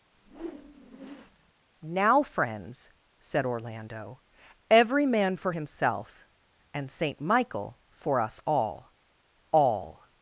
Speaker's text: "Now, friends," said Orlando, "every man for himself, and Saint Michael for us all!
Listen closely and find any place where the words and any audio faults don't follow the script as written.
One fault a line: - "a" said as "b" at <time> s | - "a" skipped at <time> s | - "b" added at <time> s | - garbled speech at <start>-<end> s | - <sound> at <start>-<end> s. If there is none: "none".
- whoosh at 0.1-1.5 s
- "all" added at 9.5 s